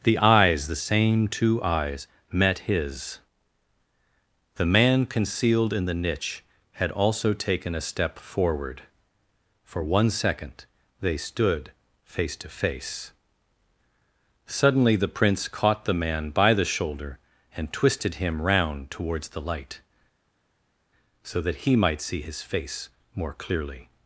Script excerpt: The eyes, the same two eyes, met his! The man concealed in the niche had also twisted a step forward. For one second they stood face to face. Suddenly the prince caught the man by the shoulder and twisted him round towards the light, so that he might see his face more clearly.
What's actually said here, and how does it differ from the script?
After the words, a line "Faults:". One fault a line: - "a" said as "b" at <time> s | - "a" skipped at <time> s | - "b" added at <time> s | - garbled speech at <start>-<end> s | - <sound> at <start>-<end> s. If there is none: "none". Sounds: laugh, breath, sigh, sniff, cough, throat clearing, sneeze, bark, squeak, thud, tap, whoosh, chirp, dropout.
The eyes, the same two eyes, met his! The man concealed in the niche had also taken a step forward. For one second they stood face to face. Suddenly the prince caught the man by the shoulder and twisted him round towards the light, so that he might see his face more clearly.
Faults:
- "twisted" said as "taken" at 7.3 s